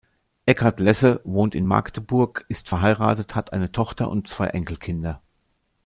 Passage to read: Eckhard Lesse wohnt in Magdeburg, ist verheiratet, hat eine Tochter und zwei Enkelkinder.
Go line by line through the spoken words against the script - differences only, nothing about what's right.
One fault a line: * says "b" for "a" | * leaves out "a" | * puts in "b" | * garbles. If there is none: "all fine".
all fine